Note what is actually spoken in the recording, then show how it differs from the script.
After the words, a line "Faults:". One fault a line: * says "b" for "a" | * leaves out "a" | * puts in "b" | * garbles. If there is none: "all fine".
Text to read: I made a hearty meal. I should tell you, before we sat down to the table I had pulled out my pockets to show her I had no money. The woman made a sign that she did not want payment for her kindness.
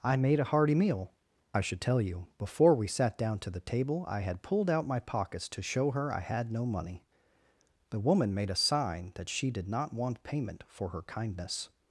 I made a hearty meal. I should tell you, before we sat down to the table I had pulled out my pockets to show her I had no money. The woman made a sign that she did not want payment for her kindness.
Faults:
all fine